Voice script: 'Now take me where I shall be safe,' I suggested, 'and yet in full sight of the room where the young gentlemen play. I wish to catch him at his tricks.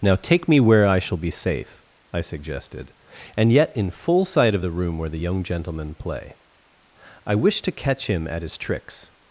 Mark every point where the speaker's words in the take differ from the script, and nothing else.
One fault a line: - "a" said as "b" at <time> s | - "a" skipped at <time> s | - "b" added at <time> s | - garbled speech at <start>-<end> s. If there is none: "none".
none